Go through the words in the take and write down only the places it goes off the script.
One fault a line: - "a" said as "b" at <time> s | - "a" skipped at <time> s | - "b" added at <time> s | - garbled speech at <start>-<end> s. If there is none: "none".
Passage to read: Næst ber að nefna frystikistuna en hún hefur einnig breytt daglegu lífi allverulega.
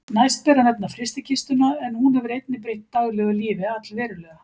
none